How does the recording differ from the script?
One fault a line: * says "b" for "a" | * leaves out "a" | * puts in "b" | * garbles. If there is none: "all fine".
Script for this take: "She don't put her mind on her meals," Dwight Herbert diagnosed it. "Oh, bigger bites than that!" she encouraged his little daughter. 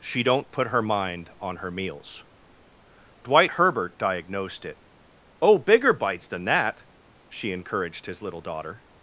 all fine